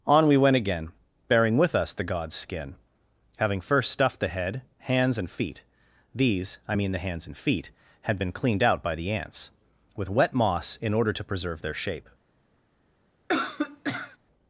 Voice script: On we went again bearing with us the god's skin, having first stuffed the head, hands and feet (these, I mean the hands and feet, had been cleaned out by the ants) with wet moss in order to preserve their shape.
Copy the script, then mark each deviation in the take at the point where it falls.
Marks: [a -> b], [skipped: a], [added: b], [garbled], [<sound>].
On we went again bearing with us the god's skin, having first stuffed the head, hands and feet (these, I mean the hands and feet, had been cleaned out by the ants) with wet moss in order to preserve their shape. [cough]